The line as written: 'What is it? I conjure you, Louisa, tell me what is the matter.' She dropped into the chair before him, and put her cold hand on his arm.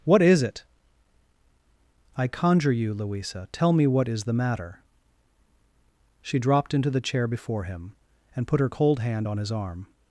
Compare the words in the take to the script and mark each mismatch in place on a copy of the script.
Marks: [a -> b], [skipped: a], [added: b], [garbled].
'What is it? I conjure you, Louisa, tell me what is the matter.' She dropped into the chair before him, and put her cold hand on his arm.